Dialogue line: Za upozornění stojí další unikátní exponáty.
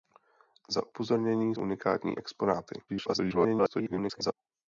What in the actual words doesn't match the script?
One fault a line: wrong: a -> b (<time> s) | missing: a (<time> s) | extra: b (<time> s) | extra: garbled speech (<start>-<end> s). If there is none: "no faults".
missing: stojí další (1.6 s)
extra: garbled speech (2.9-4.3 s)